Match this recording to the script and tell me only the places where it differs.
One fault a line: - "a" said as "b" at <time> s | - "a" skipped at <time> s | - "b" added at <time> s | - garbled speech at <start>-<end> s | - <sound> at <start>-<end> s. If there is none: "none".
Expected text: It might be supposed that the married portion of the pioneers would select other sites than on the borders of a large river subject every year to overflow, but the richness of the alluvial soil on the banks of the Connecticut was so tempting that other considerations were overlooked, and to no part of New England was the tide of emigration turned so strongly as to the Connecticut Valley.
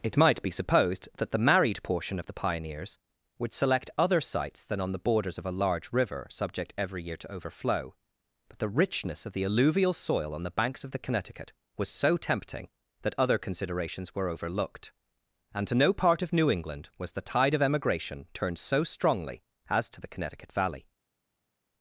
none